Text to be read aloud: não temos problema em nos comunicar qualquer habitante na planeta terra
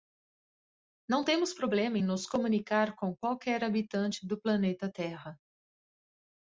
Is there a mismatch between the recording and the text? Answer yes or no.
yes